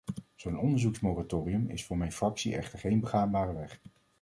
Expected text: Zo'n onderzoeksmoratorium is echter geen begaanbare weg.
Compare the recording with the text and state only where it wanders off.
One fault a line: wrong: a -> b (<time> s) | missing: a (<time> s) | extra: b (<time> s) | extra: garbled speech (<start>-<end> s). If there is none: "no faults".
extra: voor mijn fractie (1.9 s)